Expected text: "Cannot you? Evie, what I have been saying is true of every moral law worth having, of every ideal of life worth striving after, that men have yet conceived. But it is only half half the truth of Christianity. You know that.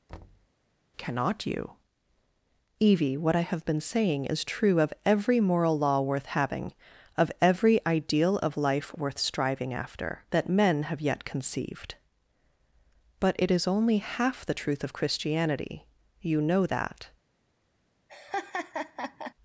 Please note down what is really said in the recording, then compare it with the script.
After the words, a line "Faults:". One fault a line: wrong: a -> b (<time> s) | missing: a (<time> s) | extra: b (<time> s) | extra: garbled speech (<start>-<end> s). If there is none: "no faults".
"Cannot you? Evie, what I have been saying is true of every moral law worth having, of every ideal of life worth striving after, that men have yet conceived. But it is only half the truth of Christianity. You know that.
Faults:
missing: half (14.4 s)